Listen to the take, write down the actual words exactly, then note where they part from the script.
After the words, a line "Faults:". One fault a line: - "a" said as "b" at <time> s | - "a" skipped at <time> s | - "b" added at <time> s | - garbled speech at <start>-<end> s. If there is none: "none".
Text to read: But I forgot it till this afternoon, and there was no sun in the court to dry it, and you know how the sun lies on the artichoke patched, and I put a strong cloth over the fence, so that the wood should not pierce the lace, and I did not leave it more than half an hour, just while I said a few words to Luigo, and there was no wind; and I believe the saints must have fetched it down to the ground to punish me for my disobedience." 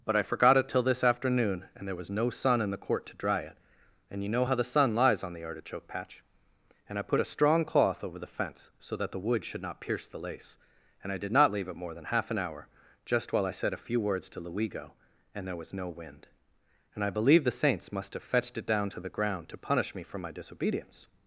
But I forgot it till this afternoon, and there was no sun in the court to dry it, and you know how the sun lies on the artichoke patch, and I put a strong cloth over the fence, so that the wood should not pierce the lace, and I did not leave it more than half an hour, just while I said a few words to Luigo, and there was no wind; and I believe the saints must have fetched it down to the ground to punish me for my disobedience."
Faults:
- "patched" said as "patch" at 5.9 s